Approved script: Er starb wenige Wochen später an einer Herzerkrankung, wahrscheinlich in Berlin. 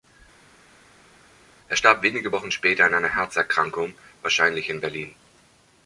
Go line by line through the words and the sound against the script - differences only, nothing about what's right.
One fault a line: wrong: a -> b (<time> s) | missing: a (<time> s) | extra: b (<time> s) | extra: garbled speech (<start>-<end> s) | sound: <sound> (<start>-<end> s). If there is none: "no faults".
no faults